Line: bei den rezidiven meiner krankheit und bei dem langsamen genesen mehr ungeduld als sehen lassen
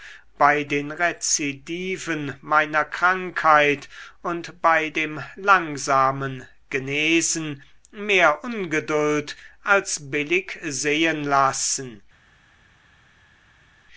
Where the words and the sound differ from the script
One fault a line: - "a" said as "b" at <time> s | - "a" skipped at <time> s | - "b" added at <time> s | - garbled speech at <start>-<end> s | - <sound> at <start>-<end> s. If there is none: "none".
- "billig" added at 10.1 s